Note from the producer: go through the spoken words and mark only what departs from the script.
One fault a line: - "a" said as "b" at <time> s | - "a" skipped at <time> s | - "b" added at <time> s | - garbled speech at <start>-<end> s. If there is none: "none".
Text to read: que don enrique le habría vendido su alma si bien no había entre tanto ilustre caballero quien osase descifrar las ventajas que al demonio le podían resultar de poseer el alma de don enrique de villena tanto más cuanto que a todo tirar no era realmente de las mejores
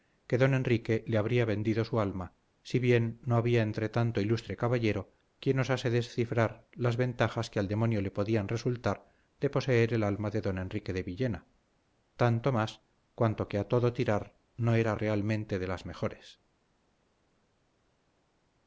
none